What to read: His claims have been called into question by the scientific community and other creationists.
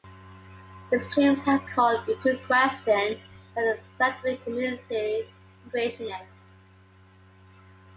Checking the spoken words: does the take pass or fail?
fail